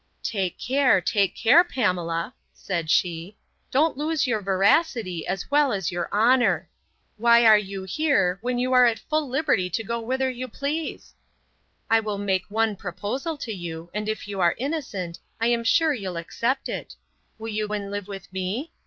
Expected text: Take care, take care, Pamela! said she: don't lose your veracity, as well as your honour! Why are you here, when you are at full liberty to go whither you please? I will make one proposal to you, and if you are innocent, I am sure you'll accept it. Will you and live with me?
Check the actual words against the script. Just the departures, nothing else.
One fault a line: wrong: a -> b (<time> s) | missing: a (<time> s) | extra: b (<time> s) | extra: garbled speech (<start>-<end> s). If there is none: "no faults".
no faults